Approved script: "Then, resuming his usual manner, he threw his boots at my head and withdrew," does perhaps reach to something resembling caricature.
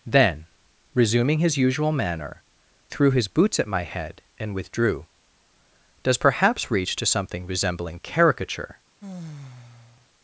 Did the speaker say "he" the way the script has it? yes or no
no